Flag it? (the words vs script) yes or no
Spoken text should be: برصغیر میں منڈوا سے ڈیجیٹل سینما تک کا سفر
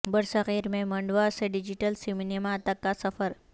no